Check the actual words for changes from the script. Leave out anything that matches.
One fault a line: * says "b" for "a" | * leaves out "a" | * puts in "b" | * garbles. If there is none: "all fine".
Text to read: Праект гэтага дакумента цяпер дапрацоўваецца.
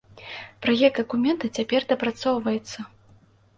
* leaves out "гэтага"